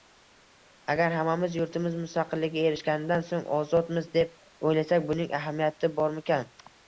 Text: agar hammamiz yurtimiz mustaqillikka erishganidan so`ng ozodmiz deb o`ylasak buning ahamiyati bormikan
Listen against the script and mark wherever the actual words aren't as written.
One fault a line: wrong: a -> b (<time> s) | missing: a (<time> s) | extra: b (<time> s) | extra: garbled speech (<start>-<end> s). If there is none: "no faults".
no faults